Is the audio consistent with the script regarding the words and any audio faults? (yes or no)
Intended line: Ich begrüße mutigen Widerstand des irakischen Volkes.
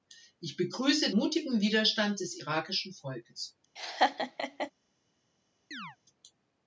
no